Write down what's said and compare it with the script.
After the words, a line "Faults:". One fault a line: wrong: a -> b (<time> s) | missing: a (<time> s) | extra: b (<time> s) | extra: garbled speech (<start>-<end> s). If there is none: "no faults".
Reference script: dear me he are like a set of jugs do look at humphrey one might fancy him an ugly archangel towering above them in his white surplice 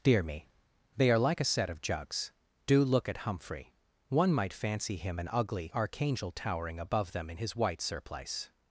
dear me they are like a set of jugs do look at humphrey one might fancy him an ugly archangel towering above them in his white surplice
Faults:
wrong: he -> they (0.9 s)